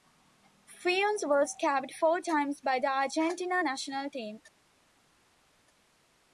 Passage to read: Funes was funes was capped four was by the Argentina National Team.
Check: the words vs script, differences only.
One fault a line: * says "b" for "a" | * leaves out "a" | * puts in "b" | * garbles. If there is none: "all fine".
* leaves out "funes was"
* says "times" for "was"